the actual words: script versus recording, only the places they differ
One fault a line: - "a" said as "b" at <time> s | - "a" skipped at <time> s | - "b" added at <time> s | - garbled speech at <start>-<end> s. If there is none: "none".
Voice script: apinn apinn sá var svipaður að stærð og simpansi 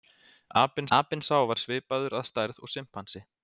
none